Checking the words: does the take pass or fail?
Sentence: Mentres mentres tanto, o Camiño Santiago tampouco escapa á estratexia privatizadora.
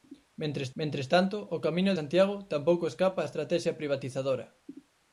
pass